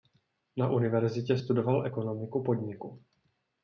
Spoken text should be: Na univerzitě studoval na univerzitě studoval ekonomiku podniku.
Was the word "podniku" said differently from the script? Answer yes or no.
no